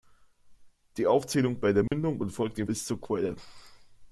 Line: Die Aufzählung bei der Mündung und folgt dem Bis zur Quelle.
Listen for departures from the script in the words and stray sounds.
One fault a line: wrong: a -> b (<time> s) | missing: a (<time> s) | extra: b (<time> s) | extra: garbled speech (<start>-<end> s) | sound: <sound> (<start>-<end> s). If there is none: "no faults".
sound: dropout (1.9-1.9 s)